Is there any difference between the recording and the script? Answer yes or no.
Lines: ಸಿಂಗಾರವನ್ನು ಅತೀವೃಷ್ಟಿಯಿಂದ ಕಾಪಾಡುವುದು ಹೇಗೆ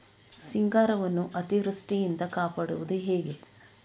no